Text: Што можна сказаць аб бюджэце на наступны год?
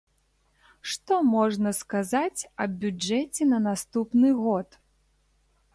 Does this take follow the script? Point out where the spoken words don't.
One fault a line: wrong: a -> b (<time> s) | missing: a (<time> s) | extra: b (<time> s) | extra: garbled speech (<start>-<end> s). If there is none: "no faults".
no faults